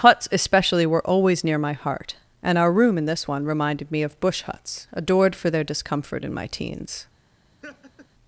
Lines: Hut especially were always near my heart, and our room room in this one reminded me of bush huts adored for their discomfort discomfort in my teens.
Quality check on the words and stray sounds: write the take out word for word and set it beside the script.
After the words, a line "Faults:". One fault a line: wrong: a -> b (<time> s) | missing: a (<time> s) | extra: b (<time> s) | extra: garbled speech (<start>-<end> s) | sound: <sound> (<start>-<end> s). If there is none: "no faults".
Huts especially were always near my heart, and our room in this one reminded me of bush huts adored for their discomfort in my teens.
Faults:
wrong: Hut -> Huts (0.0 s)
missing: room (3.0 s)
missing: discomfort (6.2 s)
sound: laugh (7.6-8.1 s)